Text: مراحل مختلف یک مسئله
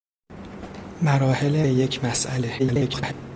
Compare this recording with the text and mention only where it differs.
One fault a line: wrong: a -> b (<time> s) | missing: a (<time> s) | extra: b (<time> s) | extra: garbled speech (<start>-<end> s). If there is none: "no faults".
missing: مختلف (1.6 s)
extra: garbled speech (2.6-3.1 s)